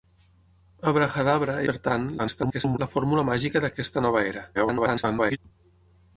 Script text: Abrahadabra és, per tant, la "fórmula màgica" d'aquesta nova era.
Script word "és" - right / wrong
wrong